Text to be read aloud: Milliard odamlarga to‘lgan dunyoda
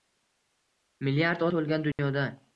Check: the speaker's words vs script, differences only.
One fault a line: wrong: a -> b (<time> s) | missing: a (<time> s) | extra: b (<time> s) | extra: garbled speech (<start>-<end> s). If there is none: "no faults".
missing: odamlarga (1.4 s)